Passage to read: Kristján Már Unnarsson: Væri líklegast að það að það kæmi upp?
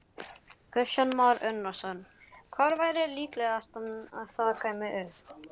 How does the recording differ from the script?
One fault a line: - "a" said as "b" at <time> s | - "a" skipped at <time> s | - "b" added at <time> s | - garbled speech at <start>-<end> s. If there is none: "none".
- "Hvar" added at 2.5 s
- "að það" skipped at 4.5 s